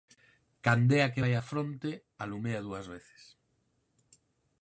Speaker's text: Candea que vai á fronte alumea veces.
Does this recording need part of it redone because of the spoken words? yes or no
yes